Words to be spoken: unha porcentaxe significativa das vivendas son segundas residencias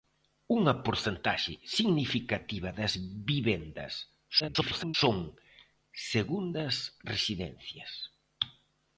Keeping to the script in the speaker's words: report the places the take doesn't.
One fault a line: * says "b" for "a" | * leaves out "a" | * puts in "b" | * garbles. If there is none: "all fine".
* garbles